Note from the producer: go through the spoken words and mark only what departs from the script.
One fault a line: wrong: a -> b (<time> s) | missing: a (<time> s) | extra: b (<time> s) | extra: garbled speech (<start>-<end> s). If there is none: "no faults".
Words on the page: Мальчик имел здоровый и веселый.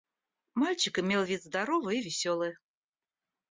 extra: вид (1.2 s)